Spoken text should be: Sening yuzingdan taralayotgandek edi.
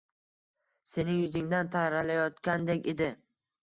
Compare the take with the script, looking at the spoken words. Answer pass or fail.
pass